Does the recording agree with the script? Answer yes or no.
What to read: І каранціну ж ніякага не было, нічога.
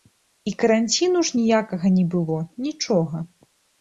yes